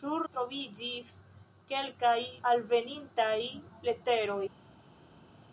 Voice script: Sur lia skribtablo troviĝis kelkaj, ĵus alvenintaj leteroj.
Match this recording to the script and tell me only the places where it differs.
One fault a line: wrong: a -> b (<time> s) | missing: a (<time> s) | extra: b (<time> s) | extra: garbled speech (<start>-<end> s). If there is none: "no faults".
missing: lia skribtablo (0.2 s)
missing: ĵus (2.2 s)